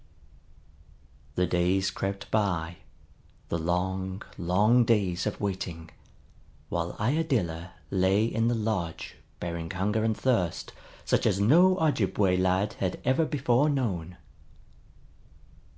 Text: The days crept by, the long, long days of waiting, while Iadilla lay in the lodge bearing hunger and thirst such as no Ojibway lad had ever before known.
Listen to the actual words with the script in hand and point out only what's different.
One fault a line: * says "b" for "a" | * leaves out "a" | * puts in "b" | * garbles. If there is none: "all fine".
all fine